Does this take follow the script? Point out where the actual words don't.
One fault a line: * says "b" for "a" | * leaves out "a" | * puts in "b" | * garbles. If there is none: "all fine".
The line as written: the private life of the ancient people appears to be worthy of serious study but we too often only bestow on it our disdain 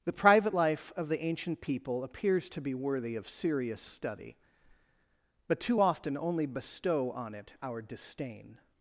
* leaves out "we"